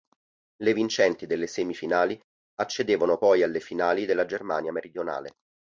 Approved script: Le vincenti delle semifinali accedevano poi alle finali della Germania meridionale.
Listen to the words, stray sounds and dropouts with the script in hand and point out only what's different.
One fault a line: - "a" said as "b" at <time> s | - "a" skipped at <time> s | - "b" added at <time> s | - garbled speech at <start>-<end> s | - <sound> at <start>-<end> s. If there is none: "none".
none